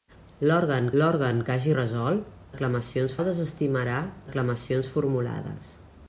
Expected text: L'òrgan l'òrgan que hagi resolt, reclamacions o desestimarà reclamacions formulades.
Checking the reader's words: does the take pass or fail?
pass